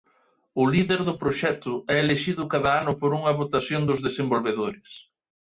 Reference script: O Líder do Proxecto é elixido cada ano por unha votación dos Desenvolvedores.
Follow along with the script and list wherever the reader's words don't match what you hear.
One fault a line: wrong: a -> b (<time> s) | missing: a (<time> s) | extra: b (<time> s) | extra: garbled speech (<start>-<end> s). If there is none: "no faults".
no faults